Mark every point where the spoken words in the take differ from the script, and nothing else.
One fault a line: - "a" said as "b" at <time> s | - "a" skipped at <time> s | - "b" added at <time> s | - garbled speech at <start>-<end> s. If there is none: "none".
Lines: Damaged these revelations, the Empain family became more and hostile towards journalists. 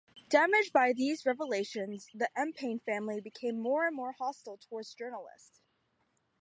- "by" added at 0.7 s
- "more" added at 3.9 s